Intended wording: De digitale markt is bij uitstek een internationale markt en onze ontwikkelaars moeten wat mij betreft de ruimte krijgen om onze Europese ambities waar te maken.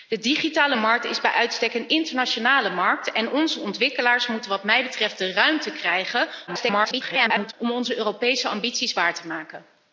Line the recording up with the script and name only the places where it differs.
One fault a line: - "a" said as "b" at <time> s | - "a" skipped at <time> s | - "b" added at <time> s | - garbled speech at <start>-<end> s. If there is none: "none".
- garbled speech at 6.5-7.5 s